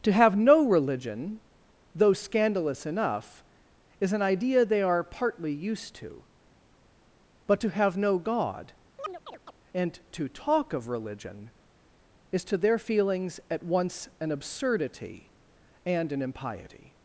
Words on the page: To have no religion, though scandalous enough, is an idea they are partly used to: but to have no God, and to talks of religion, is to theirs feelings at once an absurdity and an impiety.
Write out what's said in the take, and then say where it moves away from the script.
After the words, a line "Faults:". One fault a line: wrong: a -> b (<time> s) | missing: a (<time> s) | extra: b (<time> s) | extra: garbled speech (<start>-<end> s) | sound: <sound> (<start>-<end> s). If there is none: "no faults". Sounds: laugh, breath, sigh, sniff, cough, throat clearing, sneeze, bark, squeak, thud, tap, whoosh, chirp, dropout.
To have no religion, though scandalous enough, is an idea they are partly used to: but to have no God, and to talk of religion, is to their feelings at once an absurdity and an impiety.
Faults:
sound: chirp (9.0-9.5 s)
wrong: talks -> talk (10.3 s)
wrong: theirs -> their (12.6 s)